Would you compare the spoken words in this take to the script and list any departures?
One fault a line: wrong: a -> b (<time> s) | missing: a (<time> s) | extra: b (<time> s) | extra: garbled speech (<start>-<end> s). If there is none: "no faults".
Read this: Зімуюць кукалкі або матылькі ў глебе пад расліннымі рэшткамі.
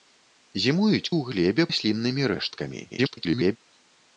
missing: кукалкі або матылькі (1.1 s)
missing: пад (1.6 s)
extra: garbled speech (2.9-3.6 s)